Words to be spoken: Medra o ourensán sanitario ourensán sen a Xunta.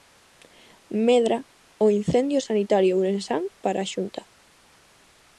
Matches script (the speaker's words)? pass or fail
fail